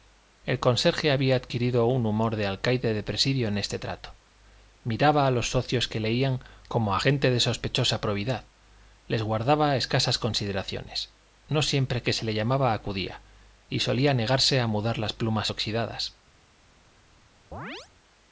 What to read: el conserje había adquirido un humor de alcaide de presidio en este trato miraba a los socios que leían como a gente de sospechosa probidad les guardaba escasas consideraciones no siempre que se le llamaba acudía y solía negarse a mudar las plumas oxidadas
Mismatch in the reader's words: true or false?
false